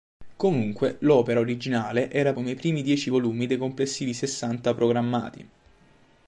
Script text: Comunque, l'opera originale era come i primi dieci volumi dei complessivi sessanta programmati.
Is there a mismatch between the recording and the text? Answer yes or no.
no